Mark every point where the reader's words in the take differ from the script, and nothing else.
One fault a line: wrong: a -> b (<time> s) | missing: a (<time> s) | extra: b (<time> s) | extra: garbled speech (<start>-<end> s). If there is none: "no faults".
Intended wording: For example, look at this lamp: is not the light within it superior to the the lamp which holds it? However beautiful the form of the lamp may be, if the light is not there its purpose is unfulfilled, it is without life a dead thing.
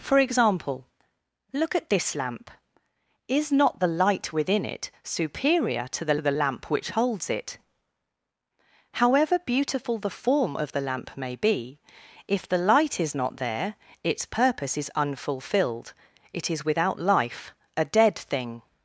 no faults